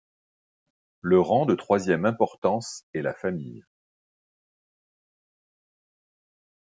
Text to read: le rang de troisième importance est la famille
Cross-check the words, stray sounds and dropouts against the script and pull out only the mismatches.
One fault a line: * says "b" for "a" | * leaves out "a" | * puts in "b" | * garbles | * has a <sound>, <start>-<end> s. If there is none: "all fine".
all fine